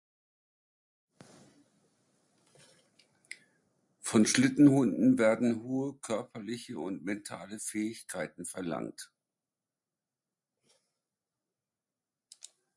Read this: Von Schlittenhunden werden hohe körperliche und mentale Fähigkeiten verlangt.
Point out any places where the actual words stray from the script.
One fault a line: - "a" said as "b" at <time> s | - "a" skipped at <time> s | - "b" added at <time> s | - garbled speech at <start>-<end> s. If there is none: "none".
none